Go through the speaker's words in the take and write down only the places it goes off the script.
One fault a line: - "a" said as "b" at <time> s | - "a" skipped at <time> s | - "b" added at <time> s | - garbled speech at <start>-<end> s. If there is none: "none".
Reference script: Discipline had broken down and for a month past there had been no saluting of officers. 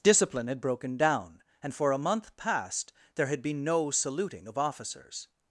none